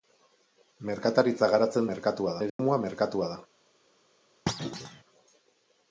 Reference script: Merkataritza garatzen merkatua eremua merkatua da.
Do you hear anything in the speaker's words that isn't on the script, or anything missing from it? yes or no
no